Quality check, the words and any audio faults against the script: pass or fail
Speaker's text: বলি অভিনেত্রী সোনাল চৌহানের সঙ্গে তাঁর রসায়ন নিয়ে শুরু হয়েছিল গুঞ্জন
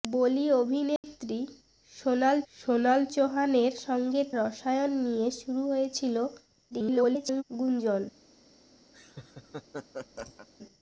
fail